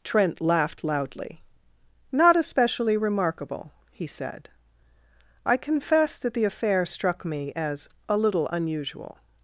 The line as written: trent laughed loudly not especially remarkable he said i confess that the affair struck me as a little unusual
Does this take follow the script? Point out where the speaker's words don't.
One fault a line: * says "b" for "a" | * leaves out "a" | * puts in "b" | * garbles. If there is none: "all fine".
all fine